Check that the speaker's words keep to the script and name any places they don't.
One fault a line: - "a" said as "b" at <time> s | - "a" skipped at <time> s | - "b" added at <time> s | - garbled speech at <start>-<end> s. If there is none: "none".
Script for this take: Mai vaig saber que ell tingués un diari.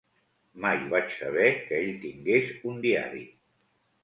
none